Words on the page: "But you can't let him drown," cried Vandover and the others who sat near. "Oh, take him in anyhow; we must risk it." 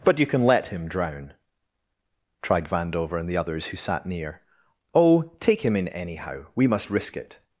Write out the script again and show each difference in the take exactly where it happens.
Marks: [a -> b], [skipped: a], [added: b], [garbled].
"But you [can't -> can] let him drown," [cried -> tried] Vandover and the others who sat near. "Oh, take him in anyhow; we must risk it."